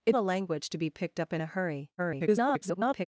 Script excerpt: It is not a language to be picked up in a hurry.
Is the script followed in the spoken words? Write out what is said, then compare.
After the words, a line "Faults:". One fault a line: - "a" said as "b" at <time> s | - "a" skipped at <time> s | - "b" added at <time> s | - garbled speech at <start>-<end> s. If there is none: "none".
It a language to be picked up in a hurry. [garbled]
Faults:
- "is not" skipped at 0.1 s
- garbled speech at 2.0-3.1 s